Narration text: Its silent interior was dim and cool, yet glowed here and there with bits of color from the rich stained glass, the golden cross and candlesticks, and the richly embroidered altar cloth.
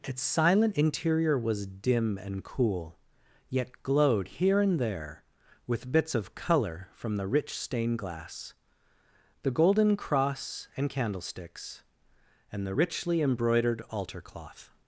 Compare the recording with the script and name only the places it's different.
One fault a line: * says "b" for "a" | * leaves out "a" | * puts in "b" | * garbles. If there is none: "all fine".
all fine